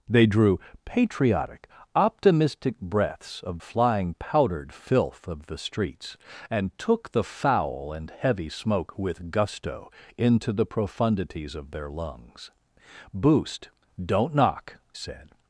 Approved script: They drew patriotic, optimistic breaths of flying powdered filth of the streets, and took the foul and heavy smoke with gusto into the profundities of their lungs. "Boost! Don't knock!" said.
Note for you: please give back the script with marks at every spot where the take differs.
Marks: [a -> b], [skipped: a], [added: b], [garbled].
They drew patriotic, optimistic breaths of flying powdered filth of the streets, and took the foul and heavy smoke with gusto into the profundities of their lungs. "Boost! Don't knock!" said.